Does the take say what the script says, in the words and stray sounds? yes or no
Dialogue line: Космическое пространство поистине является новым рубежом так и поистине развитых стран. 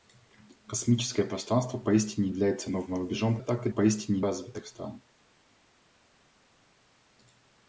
yes